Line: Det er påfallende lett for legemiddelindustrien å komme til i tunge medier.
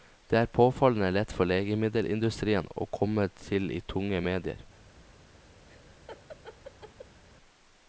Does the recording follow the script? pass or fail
pass